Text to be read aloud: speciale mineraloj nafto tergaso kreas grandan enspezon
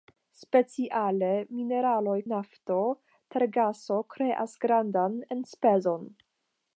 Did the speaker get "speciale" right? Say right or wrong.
right